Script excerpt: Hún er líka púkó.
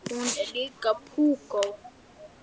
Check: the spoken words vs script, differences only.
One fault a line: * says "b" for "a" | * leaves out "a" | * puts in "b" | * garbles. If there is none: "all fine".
all fine